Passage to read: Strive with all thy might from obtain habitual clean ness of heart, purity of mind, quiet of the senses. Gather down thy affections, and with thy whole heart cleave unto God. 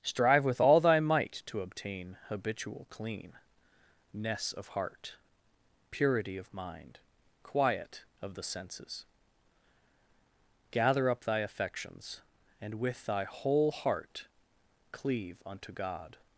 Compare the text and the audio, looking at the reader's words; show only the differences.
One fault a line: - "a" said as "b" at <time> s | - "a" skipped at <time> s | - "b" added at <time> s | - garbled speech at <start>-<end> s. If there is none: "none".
- "from" said as "to" at 1.4 s
- "down" said as "up" at 11.1 s